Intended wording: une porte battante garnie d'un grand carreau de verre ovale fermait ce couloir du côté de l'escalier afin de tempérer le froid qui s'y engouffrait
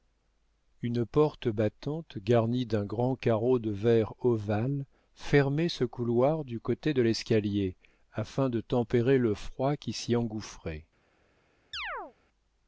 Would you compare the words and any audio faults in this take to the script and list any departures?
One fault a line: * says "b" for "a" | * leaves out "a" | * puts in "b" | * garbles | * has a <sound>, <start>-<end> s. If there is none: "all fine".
* has a chirp, 11.7-12.1 s